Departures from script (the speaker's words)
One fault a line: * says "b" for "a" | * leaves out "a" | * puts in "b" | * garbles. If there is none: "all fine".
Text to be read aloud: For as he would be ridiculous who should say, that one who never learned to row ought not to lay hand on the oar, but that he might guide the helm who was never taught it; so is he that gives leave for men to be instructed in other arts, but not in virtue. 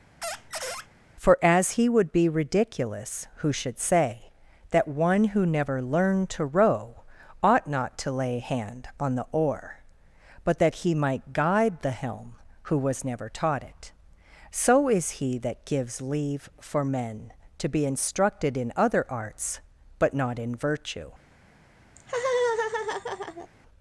all fine